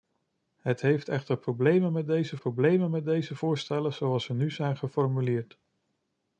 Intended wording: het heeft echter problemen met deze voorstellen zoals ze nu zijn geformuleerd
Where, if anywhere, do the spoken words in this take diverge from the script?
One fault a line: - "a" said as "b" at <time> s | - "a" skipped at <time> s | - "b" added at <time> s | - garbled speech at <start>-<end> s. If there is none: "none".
- "problemen met deze" added at 2.4 s